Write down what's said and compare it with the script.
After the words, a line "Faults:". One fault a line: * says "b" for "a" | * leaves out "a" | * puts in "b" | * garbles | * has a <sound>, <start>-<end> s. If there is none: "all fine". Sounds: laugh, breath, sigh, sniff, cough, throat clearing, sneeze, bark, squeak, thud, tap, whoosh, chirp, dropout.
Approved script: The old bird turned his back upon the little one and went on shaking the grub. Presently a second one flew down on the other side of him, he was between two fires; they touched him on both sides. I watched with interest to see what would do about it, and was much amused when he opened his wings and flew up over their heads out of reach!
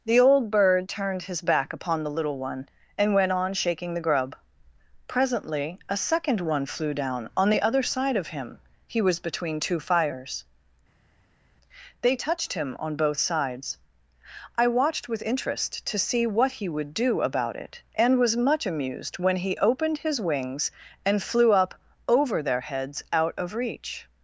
The old bird turned his back upon the little one and went on shaking the grub. Presently a second one flew down on the other side of him, he was between two fires; they touched him on both sides. I watched with interest to see what he would do about it, and was much amused when he opened his wings and flew up over their heads out of reach!
Faults:
* puts in "he"